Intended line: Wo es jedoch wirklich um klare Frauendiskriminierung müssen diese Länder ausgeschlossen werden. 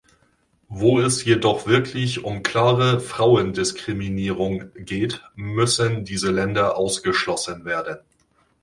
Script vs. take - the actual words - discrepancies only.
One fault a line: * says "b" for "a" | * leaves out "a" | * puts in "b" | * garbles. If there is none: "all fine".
* puts in "geht"